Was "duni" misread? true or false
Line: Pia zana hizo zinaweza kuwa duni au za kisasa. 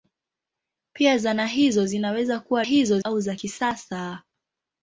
true